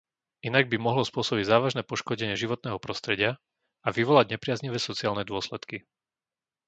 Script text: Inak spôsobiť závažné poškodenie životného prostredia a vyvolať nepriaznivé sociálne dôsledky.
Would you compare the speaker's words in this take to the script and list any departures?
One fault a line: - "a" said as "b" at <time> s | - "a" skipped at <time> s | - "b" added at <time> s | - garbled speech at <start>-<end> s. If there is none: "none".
- "by mohlo" added at 0.7 s